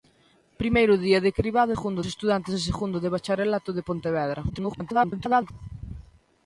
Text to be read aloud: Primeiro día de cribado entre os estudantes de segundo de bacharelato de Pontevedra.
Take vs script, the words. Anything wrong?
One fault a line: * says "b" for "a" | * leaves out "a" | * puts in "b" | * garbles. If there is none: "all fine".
* says "segundo" for "entre"
* garbles